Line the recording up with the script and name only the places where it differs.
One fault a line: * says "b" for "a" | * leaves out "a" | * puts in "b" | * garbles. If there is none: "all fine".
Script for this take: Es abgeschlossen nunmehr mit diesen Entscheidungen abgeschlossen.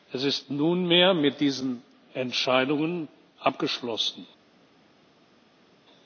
* says "ist" for "abgeschlossen"